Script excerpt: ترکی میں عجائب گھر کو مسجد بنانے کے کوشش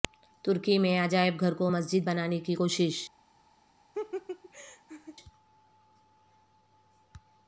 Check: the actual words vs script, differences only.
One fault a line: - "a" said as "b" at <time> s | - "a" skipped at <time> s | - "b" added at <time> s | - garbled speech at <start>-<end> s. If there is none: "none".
- "کے" said as "کی" at 2.4 s